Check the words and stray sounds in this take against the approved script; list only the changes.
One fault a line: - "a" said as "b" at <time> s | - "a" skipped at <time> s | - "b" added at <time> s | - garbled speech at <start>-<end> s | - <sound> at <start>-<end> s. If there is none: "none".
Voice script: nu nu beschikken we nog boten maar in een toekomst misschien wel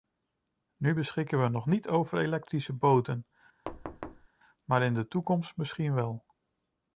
- "nu" skipped at 0.9 s
- "niet over elektrische" added at 1.7 s
- thud at 3.7-4.3 s
- "een" said as "de" at 4.9 s